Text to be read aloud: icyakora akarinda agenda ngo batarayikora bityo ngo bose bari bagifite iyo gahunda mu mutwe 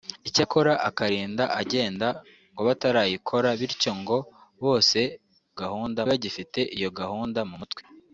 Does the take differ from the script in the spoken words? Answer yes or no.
yes